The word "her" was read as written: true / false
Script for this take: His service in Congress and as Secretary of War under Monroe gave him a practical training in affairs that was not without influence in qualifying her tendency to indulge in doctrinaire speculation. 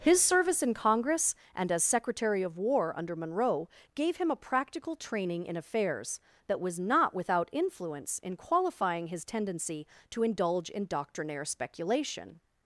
false